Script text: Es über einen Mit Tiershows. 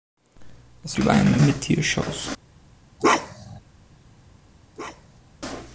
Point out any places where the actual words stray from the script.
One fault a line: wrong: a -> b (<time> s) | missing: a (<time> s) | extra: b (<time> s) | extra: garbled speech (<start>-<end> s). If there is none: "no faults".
no faults